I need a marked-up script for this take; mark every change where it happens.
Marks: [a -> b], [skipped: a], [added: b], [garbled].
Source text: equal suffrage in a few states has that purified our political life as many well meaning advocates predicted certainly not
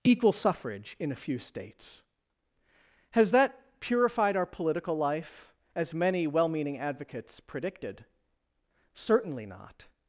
equal suffrage in a few states has that purified our political life as many well meaning advocates predicted certainly not